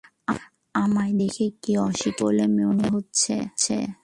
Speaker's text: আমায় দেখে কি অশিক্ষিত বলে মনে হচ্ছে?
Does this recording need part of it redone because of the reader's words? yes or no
no